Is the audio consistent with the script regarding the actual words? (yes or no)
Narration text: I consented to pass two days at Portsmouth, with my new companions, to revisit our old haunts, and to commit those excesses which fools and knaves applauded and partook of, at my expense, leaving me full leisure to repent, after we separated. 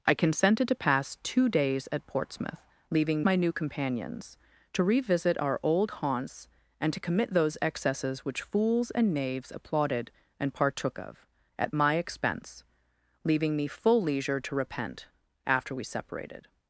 no